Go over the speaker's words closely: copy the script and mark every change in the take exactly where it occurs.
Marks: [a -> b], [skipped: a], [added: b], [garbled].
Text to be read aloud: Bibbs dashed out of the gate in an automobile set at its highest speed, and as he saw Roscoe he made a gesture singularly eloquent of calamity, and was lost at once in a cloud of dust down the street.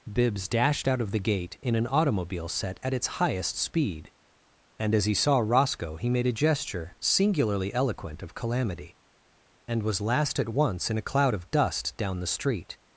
Bibbs dashed out of the gate in an automobile set at its highest speed, and as he saw Roscoe he made a gesture singularly eloquent of calamity, and was [lost -> last] at once in a cloud of dust down the street.